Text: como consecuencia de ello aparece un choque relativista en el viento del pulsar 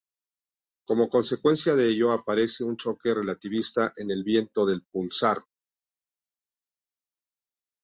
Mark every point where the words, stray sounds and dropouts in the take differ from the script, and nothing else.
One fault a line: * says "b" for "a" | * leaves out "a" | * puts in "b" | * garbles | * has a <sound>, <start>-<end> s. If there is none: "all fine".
all fine